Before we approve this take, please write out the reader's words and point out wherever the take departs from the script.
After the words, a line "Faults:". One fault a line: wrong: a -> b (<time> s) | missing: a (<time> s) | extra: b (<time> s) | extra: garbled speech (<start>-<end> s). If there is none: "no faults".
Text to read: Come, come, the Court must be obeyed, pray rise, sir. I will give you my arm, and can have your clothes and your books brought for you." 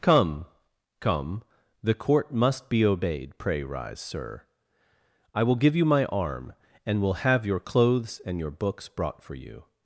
Come, come, the Court must be obeyed, pray rise, sir. I will give you my arm, and will have your clothes and your books brought for you."
Faults:
wrong: can -> will (7.0 s)